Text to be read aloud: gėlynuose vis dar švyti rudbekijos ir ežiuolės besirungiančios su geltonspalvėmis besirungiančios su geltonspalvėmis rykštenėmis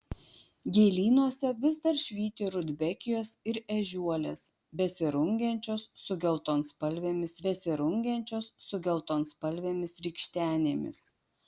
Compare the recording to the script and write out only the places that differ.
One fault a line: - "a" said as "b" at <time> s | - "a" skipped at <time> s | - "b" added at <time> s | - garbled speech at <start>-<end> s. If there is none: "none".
none